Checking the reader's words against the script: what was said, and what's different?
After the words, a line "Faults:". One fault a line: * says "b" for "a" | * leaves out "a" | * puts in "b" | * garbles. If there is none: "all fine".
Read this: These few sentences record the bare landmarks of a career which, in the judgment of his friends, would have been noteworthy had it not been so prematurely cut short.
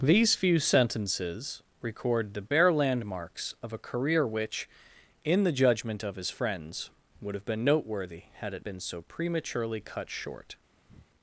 These few sentences record the bare landmarks of a career which, in the judgment of his friends, would have been noteworthy had it been so prematurely cut short.
Faults:
* leaves out "not"